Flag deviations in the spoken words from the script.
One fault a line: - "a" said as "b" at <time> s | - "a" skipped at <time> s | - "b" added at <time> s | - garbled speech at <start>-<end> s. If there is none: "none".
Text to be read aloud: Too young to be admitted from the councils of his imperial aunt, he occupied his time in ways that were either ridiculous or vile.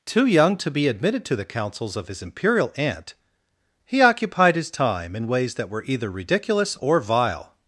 - "from" said as "to" at 1.2 s